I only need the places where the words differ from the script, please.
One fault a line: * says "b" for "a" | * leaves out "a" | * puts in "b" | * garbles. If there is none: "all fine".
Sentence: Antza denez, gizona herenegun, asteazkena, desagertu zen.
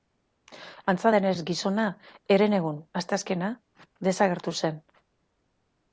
all fine